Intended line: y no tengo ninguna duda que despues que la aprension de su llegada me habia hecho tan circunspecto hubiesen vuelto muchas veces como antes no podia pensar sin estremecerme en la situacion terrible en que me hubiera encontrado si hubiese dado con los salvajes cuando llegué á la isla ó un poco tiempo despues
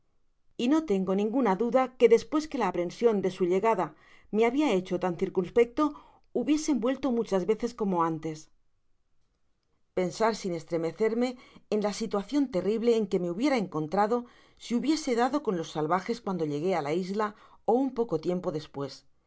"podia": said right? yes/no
no